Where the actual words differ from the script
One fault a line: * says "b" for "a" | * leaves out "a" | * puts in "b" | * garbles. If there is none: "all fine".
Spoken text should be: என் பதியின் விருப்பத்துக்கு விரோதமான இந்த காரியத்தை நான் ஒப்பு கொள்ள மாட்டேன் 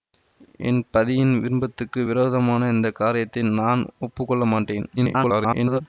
* garbles